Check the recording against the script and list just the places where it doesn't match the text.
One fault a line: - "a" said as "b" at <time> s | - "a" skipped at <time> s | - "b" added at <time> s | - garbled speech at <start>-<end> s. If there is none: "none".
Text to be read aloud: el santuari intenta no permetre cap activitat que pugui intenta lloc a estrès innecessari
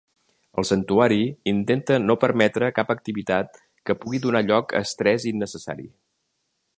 - "intenta" said as "donar" at 4.3 s